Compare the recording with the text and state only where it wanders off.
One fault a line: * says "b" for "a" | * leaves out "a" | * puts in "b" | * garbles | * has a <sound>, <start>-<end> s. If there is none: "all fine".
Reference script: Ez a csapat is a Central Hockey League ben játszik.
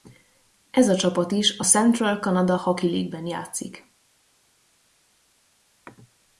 * puts in "Canada"